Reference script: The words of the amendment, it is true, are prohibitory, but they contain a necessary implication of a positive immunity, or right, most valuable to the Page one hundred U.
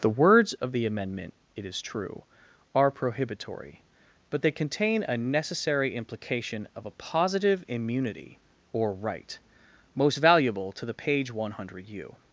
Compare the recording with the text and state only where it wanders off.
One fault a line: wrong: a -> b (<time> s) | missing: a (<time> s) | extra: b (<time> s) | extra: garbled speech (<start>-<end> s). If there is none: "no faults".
no faults